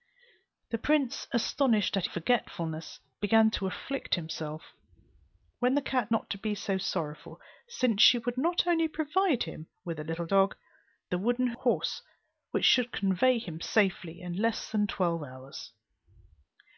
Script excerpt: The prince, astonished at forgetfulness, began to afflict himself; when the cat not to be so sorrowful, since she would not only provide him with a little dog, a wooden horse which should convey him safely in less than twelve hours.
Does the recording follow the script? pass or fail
pass